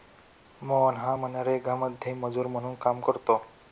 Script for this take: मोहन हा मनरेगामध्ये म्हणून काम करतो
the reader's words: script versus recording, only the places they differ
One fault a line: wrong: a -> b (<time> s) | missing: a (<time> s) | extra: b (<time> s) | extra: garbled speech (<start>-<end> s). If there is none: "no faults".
extra: मजूर (2.2 s)